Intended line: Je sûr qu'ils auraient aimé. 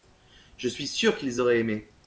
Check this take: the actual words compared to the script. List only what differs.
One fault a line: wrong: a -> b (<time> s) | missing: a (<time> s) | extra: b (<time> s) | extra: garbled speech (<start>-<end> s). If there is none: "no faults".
extra: suis (0.7 s)